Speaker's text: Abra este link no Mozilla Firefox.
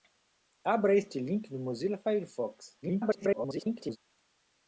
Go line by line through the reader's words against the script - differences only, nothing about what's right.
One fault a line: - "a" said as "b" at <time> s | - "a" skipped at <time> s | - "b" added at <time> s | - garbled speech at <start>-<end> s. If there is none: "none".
- garbled speech at 2.8-4.0 s